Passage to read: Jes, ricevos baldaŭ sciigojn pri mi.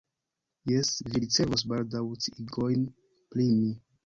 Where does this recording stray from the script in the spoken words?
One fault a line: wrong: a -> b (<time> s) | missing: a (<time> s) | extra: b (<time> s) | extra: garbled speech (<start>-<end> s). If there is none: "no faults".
extra: vi (1.1 s)